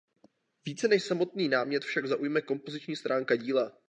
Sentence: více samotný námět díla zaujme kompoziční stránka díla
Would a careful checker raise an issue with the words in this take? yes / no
yes